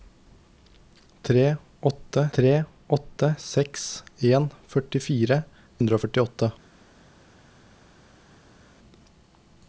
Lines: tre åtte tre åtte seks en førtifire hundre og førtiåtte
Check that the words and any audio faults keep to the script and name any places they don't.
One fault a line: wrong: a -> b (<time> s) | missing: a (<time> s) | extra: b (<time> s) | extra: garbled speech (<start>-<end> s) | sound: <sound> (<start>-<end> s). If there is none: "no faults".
no faults